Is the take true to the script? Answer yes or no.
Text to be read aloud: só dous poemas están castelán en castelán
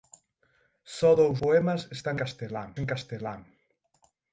yes